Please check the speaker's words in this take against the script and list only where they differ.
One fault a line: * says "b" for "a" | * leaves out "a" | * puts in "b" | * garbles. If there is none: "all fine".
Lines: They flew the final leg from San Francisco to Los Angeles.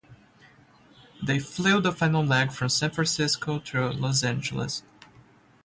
all fine